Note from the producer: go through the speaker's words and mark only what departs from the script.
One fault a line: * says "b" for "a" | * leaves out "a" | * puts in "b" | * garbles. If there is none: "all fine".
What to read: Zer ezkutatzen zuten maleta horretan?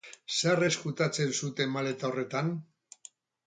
all fine